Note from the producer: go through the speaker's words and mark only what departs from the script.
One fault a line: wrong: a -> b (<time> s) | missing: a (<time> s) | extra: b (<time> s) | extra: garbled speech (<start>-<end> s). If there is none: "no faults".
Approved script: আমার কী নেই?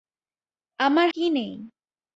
no faults